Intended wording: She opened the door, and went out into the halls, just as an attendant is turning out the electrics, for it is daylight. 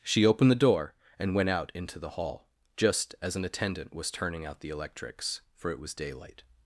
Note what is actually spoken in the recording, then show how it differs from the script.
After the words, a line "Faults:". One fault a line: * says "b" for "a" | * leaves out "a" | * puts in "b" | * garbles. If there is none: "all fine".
She opened the door, and went out into the hall, just as an attendant was turning out the electrics, for it was daylight.
Faults:
* says "hall" for "halls"
* says "was" for "is"
* says "was" for "is"